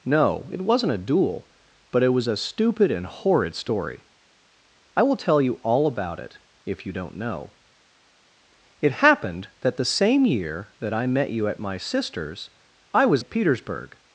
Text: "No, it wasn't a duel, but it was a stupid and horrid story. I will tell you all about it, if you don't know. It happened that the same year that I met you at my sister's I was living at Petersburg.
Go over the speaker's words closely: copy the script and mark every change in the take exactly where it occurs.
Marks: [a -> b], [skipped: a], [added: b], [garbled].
"No, it wasn't a duel, but it was a stupid and horrid story. I will tell you all about it, if you don't know. It happened that the same year that I met you at my sister's I was [skipped: living] at Petersburg.